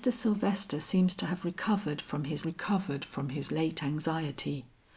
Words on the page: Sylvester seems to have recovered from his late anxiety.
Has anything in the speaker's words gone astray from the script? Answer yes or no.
yes